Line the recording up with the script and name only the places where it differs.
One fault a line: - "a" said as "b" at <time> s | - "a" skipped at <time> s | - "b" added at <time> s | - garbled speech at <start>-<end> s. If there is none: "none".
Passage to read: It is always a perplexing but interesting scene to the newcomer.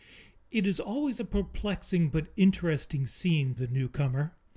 - "to" skipped at 3.5 s